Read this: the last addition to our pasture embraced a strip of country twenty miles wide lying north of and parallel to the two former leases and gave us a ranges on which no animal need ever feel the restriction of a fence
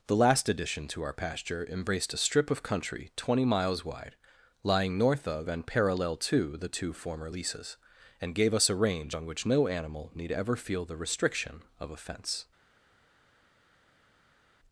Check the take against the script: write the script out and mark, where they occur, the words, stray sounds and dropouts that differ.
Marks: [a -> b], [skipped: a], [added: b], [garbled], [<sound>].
the last addition to our pasture embraced a strip of country twenty miles wide lying north of and parallel to the two former leases and gave us a [ranges -> range] on which no animal need ever feel the restriction of a fence